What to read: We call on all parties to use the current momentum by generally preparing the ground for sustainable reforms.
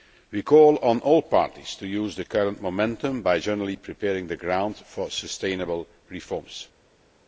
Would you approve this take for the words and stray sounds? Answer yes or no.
yes